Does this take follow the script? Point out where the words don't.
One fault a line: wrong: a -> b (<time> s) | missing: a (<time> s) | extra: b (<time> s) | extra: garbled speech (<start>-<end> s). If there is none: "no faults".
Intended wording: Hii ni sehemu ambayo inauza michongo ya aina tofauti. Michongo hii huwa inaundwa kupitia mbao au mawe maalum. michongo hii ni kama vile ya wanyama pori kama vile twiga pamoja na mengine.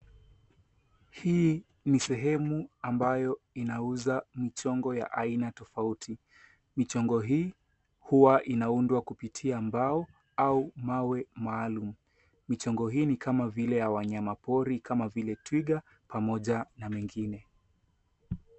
no faults